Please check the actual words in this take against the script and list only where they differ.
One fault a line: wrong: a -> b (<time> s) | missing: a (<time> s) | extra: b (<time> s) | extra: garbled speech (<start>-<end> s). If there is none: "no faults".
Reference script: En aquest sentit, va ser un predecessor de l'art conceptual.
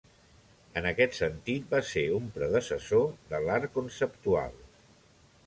no faults